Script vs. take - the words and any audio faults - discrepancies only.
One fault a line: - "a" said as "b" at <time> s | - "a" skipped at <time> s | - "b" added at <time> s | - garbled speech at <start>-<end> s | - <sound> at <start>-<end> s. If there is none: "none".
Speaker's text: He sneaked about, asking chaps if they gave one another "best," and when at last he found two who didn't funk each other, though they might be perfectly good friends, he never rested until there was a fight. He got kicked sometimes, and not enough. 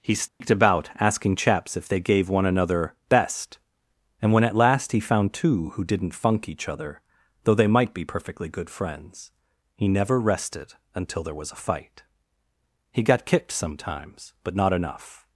- dropout at 0.3-0.4 s
- "and" said as "but" at 14.4 s